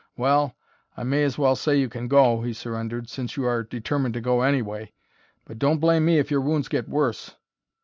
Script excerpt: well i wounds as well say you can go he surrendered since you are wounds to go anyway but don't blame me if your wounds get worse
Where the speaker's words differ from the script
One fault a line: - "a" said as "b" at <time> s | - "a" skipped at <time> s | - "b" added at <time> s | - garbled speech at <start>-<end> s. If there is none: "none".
- "wounds" said as "may" at 1.0 s
- "wounds" said as "determined" at 3.6 s